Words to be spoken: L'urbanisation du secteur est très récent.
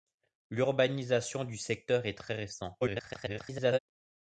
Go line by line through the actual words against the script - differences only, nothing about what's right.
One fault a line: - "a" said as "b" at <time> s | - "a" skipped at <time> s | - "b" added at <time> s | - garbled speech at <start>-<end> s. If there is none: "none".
- garbled speech at 2.8-3.8 s